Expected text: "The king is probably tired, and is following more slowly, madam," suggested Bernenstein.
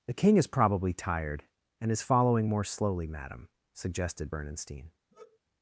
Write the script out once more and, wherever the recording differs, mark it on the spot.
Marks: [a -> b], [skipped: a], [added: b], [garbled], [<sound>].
"The king is probably tired, and is following more slowly, madam," suggested Bernenstein. [sigh]